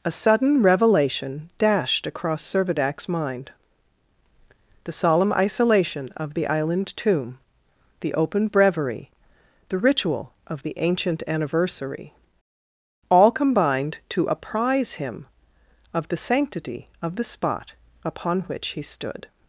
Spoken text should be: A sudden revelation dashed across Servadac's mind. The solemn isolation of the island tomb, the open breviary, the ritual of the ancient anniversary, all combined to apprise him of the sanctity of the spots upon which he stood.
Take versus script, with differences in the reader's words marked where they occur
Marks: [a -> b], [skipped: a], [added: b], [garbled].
A sudden revelation dashed across Servadac's mind. The solemn isolation of the island tomb, the open breviary, the ritual of the ancient anniversary, all combined to apprise him of the sanctity of the [spots -> spot] upon which he stood.